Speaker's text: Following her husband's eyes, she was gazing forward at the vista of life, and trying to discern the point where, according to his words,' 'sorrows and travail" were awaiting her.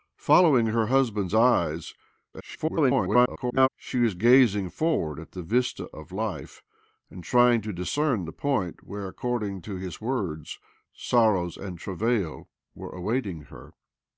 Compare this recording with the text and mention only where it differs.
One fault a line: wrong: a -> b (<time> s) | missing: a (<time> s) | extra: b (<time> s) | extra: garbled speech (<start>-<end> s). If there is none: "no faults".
extra: garbled speech (2.3-3.7 s)